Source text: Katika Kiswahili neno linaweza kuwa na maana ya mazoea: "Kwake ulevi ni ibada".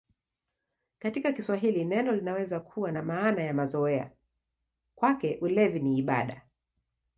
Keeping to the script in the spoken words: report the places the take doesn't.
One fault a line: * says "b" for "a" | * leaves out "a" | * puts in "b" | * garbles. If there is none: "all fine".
all fine